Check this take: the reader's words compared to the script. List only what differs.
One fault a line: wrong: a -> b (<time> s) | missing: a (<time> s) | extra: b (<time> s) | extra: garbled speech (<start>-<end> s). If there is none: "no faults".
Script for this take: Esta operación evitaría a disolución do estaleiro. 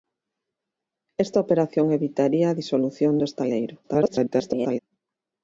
extra: garbled speech (3.8-4.8 s)